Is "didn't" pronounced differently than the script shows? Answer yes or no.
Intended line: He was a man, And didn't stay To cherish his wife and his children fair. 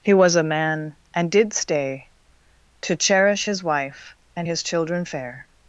yes